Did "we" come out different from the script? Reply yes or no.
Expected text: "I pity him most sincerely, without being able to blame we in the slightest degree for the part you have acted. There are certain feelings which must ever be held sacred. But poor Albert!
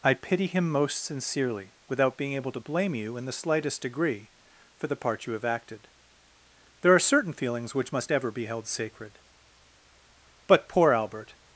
yes